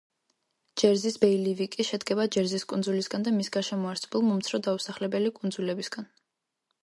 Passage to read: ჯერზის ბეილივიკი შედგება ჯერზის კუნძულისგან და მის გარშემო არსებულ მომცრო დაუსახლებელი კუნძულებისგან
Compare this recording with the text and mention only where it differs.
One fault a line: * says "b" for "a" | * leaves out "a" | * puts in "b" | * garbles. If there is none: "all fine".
all fine